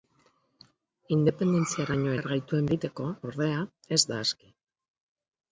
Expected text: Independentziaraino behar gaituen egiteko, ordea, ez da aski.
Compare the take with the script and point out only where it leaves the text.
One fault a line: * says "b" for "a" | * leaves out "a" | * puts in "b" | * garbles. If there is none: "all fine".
all fine